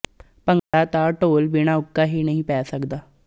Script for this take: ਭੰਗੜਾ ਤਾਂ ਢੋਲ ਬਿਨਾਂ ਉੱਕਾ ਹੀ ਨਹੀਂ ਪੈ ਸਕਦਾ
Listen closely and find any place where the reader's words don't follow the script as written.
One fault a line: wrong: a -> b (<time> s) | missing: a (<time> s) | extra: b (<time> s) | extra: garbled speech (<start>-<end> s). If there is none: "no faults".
no faults